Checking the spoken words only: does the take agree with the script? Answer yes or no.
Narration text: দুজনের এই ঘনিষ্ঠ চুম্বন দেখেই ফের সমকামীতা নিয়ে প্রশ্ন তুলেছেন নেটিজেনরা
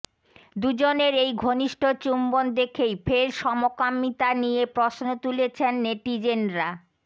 yes